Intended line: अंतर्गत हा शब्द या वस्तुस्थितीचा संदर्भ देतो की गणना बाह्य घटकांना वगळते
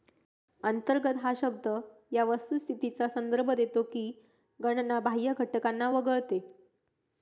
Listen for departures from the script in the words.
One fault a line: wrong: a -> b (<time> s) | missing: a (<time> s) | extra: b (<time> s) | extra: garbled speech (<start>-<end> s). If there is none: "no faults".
no faults